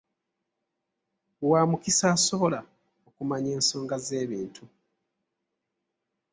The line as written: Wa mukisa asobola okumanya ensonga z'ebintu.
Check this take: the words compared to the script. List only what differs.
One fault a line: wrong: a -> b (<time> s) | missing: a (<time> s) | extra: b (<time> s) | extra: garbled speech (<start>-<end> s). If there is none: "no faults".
no faults